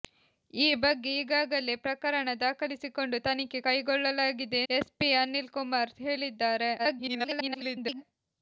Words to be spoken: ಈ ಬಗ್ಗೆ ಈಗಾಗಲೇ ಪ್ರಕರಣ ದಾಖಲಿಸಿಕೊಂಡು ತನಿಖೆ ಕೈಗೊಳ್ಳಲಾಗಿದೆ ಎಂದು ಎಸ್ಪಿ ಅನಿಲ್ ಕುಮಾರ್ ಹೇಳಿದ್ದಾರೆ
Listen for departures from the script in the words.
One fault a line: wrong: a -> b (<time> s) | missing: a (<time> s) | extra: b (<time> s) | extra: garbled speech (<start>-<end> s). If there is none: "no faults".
missing: ಎಂದು (4.6 s)
extra: garbled speech (6.8-8.0 s)